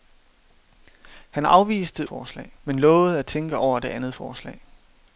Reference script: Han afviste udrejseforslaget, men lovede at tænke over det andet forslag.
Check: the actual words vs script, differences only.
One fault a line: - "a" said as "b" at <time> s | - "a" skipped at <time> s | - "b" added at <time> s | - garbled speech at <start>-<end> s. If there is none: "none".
- "udrejseforslaget" said as "forslag" at 2.0 s